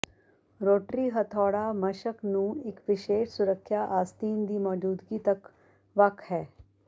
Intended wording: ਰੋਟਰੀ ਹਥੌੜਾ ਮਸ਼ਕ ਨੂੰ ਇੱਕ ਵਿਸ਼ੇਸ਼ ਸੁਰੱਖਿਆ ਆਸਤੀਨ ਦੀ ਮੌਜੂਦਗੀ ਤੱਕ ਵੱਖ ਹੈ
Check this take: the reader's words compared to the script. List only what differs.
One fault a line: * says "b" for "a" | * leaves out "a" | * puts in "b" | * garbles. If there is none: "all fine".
all fine